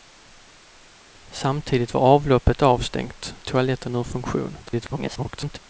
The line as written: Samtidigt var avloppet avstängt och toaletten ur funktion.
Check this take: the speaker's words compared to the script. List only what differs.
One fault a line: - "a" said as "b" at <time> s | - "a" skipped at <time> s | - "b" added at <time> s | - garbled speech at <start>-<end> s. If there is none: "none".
- "och" skipped at 3.4 s
- garbled speech at 4.7-5.6 s